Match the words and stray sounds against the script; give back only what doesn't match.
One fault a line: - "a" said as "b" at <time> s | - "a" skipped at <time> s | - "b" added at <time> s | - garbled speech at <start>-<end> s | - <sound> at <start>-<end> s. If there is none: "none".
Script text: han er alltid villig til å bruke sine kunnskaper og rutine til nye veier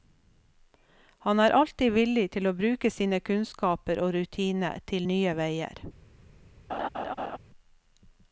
- laugh at 6.7-7.4 s